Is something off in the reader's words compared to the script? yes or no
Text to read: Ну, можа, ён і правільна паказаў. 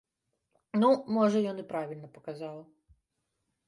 no